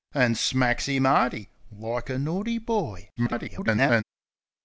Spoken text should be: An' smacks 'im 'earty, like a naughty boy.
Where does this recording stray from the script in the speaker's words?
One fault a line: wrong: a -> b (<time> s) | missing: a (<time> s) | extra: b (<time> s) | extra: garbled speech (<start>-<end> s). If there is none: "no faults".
extra: garbled speech (3.2-4.0 s)